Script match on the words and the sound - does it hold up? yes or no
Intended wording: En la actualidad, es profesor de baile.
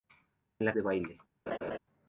no